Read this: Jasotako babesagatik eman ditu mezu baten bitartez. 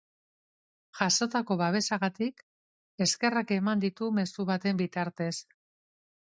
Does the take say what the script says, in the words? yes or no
no